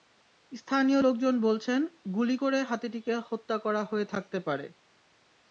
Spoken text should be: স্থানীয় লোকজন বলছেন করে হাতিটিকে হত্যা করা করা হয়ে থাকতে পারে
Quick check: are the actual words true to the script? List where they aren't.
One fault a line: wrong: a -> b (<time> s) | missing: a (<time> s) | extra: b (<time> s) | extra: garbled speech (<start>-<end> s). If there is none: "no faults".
extra: গুলি (2.1 s)
missing: করা (3.8 s)